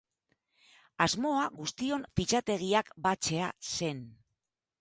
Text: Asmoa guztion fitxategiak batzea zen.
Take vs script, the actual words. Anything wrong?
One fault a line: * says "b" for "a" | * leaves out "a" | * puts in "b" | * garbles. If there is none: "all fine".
all fine